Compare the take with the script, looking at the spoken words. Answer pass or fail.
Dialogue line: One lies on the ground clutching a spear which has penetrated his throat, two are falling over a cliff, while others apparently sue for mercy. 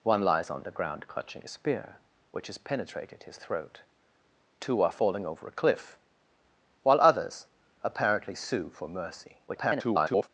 fail